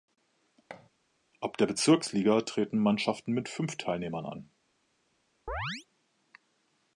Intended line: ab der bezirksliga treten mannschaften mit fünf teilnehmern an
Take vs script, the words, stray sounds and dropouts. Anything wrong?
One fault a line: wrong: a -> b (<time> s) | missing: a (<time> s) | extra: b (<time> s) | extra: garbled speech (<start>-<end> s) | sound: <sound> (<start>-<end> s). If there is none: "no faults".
sound: thud (0.7-0.9 s)
sound: chirp (5.5-5.9 s)